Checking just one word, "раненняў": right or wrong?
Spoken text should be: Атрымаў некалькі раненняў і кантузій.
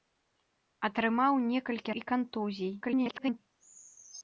wrong